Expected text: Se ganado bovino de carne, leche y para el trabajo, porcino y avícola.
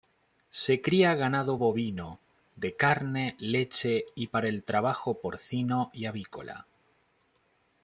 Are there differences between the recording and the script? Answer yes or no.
yes